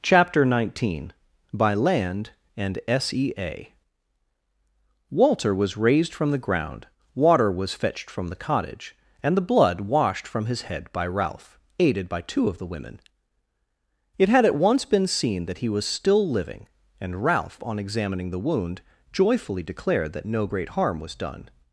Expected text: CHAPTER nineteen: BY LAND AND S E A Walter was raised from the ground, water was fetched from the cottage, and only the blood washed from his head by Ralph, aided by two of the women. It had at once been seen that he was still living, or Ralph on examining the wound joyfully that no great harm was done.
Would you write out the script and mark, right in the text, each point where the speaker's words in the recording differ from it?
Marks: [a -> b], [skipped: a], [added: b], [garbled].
CHAPTER nineteen: BY LAND AND S E A Walter was raised from the ground, water was fetched from the cottage, and [skipped: only] the blood washed from his head by Ralph, aided by two of the women. It had at once been seen that he was still living, [or -> and] Ralph on examining the wound joyfully [added: declared] that no great harm was done.